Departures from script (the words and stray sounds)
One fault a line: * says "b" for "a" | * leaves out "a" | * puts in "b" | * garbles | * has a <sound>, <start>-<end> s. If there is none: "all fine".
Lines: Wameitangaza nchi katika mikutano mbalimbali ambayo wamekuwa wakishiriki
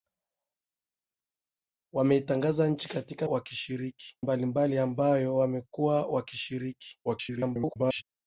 * says "wakishiriki" for "mikutano"
* garbles